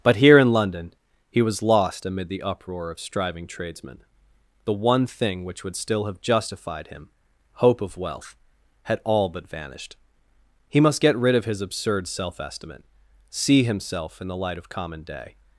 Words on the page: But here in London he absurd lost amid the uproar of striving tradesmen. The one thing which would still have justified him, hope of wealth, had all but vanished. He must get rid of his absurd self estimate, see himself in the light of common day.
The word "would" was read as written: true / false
true